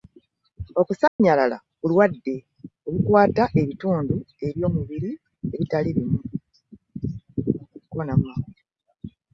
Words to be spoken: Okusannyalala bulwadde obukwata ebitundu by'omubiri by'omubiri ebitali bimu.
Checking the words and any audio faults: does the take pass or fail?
fail